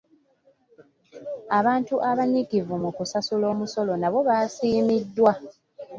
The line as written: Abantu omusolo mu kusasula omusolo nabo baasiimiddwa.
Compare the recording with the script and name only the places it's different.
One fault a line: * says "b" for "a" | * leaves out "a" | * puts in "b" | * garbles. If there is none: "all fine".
* says "abanyiikivu" for "omusolo"